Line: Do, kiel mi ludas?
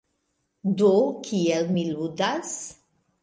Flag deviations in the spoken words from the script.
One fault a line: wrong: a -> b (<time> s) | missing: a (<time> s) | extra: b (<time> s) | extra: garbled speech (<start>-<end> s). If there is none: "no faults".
no faults